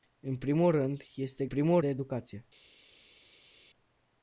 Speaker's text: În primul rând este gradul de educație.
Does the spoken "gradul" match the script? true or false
false